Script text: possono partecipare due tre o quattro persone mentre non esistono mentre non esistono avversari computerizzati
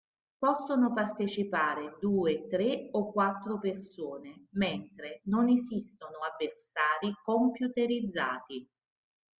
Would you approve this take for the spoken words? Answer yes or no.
no